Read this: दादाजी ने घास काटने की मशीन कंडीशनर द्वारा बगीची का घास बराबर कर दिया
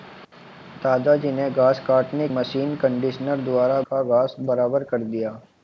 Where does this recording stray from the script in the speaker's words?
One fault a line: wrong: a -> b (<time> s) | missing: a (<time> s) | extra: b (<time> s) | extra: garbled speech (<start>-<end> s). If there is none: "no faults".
missing: की (2.3 s)
missing: बगीची (3.8 s)